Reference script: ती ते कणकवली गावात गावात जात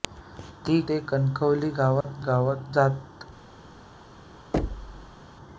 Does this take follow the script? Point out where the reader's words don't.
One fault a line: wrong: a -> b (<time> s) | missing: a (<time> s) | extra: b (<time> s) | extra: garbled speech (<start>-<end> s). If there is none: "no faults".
no faults